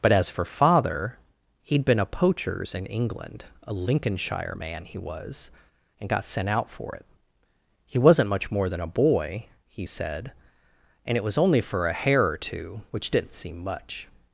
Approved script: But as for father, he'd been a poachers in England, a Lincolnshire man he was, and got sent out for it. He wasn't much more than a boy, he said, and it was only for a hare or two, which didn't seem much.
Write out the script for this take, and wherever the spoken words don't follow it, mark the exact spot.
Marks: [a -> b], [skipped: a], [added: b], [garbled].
But as for father, he'd been a poachers in England, a Lincolnshire man he was, and got sent out for it. He wasn't much more than a boy, he said, and it was only for a hare or two, which didn't seem much.